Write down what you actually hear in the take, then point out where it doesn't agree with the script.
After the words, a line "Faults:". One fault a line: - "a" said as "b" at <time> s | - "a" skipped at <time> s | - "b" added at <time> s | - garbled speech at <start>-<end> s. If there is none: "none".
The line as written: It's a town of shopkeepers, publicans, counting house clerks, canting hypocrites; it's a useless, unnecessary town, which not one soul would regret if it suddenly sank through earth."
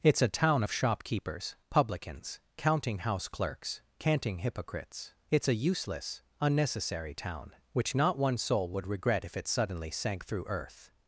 It's a town of shopkeepers, publicans, counting house clerks, canting hypocrites; it's a useless, unnecessary town, which not one soul would regret if it suddenly sank through earth."
Faults:
none